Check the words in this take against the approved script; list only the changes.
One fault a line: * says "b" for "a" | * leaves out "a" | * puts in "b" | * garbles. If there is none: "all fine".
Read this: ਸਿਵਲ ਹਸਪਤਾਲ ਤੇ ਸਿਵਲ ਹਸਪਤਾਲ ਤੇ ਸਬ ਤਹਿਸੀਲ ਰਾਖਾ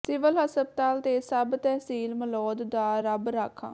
* says "ਸਬ ਤਹਿਸੀਲ ਮਲੌਦ ਦਾ ਰੱਬ" for "ਸਿਵਲ ਹਸਪਤਾਲ ਤੇ ਸਬ ਤਹਿਸੀਲ"